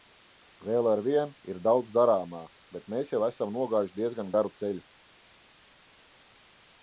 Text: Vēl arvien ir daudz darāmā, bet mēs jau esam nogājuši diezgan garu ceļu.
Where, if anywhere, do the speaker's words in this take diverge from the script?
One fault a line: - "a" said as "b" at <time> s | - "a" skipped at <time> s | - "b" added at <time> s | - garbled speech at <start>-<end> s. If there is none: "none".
none